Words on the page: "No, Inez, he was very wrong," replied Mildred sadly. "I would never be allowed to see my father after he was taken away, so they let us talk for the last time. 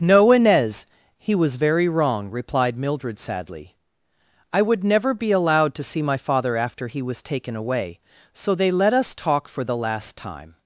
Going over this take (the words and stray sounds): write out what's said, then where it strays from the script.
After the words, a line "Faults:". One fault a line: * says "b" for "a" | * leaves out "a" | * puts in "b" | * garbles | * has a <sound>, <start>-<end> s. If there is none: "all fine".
"No, Inez, he was very wrong," replied Mildred sadly. "I would never be allowed to see my father after he was taken away, so they let us talk for the last time.
Faults:
all fine